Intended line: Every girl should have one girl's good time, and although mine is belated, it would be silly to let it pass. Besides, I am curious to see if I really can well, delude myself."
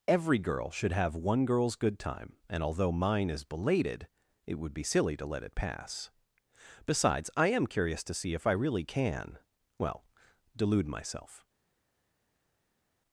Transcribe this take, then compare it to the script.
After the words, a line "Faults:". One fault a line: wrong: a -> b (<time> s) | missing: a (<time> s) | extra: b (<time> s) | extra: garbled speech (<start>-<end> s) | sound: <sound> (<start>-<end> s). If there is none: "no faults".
Every girl should have one girl's good time, and although mine is belated, it would be silly to let it pass. Besides, I am curious to see if I really can well, delude myself."
Faults:
no faults